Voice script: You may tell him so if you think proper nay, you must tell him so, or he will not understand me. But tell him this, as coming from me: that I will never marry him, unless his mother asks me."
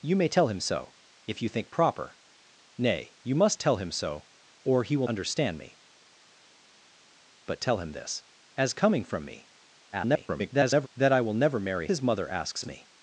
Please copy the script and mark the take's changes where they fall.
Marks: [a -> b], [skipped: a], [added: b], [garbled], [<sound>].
You may tell him so if you think proper nay, you must tell him so, or he will [skipped: not] understand me. But tell him this, as coming from me: [garbled] that I will never marry [skipped: him, unless] his mother asks me."